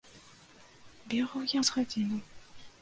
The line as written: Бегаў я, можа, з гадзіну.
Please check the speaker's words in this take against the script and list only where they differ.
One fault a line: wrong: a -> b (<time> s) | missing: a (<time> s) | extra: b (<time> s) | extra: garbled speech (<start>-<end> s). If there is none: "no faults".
missing: можа (1.6 s)